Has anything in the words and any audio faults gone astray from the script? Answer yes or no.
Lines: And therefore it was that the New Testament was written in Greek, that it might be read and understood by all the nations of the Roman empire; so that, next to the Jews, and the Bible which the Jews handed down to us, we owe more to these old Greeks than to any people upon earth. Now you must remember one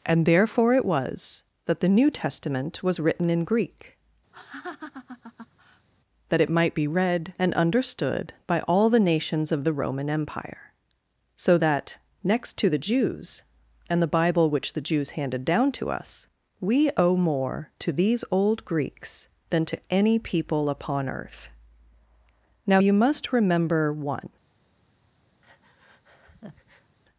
yes